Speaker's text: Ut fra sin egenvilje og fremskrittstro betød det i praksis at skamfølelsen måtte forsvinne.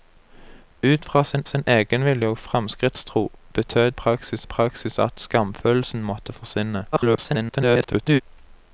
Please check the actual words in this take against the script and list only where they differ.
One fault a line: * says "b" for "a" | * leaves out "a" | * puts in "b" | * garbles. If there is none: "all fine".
* puts in "sin"
* says "praksis" for "det"
* garbles